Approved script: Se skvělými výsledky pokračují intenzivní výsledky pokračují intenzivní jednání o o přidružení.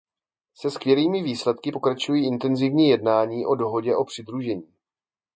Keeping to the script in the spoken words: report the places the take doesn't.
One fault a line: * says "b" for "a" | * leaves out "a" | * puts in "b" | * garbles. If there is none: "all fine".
* leaves out "výsledky pokračují intenzivní"
* puts in "dohodě"